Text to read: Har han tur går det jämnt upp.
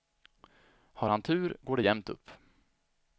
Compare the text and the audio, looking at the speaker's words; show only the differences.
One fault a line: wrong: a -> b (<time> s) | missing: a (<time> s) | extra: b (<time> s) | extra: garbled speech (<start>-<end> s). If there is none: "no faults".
no faults